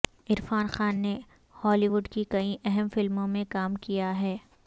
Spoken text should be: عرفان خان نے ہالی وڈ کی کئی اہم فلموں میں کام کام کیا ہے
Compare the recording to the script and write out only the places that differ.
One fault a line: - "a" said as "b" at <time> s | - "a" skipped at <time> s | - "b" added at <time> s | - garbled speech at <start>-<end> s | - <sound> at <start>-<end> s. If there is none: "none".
- "کام" skipped at 3.8 s